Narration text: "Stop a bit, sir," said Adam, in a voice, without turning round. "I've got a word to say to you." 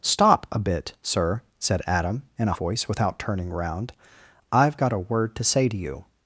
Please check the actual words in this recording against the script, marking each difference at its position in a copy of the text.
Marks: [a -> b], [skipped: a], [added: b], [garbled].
"Stop a bit, sir," said Adam, in a voice, without turning round. "I've got a word to say to you."